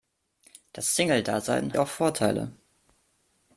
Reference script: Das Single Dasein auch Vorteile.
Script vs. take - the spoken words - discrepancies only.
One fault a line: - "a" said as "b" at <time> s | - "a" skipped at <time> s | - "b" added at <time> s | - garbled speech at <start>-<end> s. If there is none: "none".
none